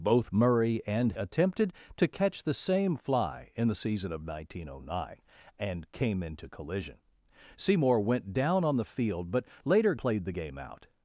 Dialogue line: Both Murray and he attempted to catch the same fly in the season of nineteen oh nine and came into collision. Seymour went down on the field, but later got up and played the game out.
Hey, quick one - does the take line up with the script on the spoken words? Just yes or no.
no